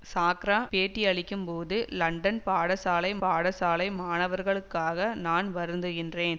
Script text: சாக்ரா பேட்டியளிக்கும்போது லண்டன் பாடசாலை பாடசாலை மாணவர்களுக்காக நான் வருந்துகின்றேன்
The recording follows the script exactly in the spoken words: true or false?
true